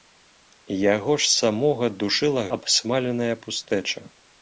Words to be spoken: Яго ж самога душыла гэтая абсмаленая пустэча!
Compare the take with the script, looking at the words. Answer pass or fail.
fail